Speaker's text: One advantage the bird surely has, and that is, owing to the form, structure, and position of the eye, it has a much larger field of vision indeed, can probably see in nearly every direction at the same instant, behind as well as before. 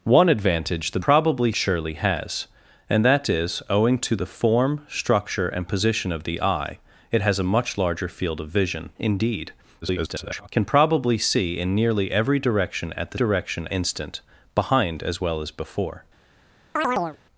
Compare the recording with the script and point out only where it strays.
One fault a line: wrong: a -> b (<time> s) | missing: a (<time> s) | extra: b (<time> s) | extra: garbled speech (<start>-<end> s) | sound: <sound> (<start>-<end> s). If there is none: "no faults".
wrong: bird -> probably (1.0 s)
extra: garbled speech (9.8-10.5 s)
wrong: same -> direction (13.1 s)
sound: chirp (16.8-17.2 s)